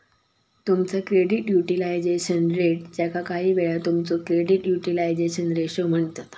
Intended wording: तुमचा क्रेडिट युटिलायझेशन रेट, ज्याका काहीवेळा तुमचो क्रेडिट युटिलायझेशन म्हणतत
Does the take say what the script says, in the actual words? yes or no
no